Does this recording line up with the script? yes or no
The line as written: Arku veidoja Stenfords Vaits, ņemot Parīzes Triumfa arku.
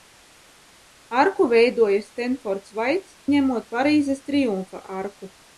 yes